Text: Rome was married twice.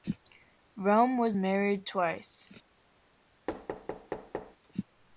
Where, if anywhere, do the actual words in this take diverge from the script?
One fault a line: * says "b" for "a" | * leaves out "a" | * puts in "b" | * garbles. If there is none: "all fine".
all fine